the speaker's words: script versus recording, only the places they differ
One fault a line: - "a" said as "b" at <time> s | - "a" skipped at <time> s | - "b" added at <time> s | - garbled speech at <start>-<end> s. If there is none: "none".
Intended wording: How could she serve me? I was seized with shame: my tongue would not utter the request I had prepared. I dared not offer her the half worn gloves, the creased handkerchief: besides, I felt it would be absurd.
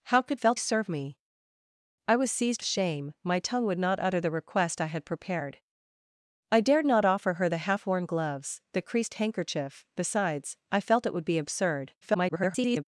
- "she" said as "felt" at 0.3 s
- "with" skipped at 2.6 s
- garbled speech at 12.0-12.8 s